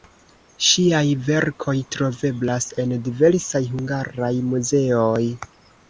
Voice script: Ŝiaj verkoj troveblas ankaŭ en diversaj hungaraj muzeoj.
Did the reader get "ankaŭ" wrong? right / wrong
wrong